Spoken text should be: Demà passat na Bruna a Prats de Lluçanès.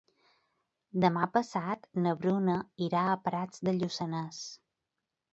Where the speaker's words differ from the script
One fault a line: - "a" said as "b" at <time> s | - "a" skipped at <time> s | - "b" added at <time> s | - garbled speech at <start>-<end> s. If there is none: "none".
- "irà" added at 2.9 s